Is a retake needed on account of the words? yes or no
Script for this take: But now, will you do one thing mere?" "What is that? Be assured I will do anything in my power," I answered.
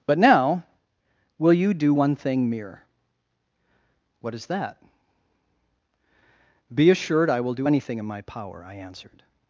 no